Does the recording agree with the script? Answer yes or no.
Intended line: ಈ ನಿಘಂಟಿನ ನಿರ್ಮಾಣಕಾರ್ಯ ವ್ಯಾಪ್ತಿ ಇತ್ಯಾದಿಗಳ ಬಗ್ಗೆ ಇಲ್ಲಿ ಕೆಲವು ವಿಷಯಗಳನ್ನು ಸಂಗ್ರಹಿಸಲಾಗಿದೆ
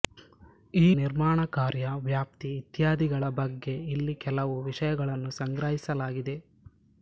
no